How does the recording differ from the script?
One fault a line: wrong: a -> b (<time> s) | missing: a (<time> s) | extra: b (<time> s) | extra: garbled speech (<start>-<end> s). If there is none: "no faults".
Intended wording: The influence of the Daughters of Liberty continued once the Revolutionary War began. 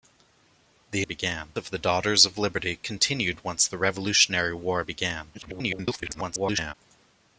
wrong: influence -> began (1.0 s)
extra: garbled speech (5.3-6.7 s)